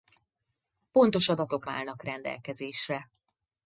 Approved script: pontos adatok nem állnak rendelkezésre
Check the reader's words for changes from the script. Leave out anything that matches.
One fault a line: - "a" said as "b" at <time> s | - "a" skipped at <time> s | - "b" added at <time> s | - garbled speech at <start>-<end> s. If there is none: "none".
- "nem" skipped at 1.6 s